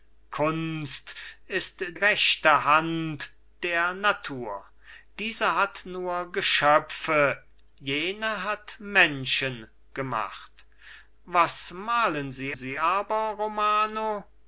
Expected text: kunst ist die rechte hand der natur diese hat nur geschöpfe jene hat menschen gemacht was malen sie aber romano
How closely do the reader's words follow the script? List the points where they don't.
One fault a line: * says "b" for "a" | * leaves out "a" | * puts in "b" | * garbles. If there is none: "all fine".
* leaves out "die"
* puts in "sie"